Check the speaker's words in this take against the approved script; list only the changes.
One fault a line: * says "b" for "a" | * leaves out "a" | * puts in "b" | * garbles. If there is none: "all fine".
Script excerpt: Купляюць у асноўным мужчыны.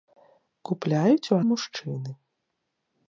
* leaves out "асноўным"